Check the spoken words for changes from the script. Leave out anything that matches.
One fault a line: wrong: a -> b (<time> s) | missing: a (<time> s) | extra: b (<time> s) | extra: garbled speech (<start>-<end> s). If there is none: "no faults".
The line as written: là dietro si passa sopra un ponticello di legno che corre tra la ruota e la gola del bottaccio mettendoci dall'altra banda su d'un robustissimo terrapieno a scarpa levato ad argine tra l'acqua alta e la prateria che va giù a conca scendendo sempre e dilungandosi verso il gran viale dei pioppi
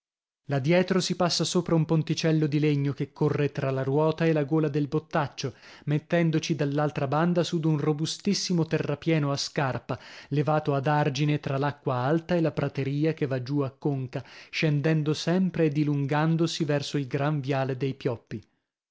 no faults